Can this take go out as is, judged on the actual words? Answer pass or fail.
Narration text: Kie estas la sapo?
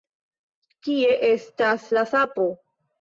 pass